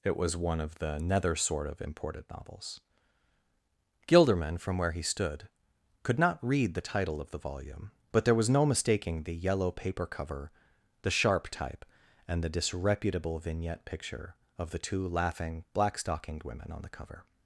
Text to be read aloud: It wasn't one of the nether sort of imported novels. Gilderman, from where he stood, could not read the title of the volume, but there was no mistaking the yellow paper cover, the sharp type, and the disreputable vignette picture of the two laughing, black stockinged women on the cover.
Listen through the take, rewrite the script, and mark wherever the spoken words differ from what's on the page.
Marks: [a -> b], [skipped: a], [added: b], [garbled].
It [wasn't -> was] one of the nether sort of imported novels. Gilderman, from where he stood, could not read the title of the volume, but there was no mistaking the yellow paper cover, the sharp type, and the disreputable vignette picture of the two laughing, black stockinged women on the cover.